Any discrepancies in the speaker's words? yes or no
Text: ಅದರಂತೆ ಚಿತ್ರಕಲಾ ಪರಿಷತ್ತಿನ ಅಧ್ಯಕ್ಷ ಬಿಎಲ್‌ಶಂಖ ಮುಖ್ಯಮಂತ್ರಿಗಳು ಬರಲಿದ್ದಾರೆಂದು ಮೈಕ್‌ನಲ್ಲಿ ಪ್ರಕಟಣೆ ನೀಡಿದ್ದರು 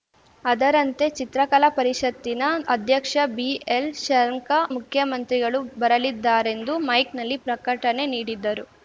no